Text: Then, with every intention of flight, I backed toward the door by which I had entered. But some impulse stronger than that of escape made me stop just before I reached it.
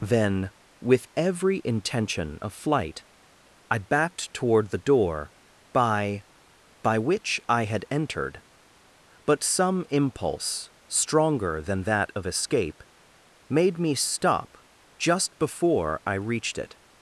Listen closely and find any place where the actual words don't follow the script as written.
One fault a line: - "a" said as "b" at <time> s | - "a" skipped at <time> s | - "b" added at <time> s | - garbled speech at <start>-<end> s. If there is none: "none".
- "by" added at 6.8 s